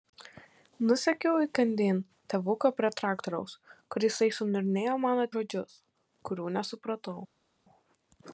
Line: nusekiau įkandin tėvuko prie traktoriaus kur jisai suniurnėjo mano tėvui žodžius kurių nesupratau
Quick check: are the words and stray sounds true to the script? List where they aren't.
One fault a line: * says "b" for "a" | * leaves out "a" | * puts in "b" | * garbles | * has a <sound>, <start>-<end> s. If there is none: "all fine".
* leaves out "tėvui"